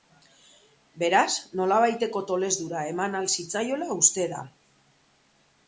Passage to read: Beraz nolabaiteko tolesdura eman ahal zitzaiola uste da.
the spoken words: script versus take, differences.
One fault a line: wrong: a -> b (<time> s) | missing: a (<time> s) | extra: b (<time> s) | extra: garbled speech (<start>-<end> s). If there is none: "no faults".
no faults